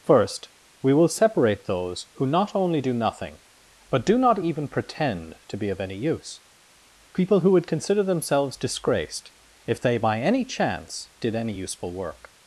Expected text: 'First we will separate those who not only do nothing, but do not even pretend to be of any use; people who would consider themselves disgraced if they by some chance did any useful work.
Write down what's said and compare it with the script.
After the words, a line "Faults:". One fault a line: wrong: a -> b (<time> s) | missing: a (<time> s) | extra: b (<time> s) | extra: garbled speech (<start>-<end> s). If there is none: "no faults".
'First we will separate those who not only do nothing, but do not even pretend to be of any use; people who would consider themselves disgraced if they by any chance did any useful work.
Faults:
wrong: some -> any (10.2 s)